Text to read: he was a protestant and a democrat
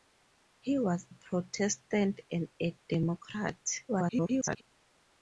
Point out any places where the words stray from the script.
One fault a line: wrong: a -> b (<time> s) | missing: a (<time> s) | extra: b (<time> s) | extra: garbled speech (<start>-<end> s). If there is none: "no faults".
missing: a (1.1 s)
extra: garbled speech (3.9-4.6 s)